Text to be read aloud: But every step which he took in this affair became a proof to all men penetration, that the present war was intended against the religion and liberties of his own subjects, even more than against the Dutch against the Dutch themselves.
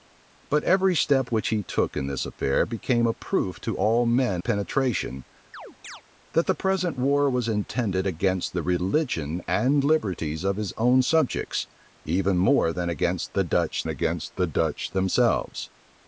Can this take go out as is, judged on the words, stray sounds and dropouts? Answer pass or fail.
fail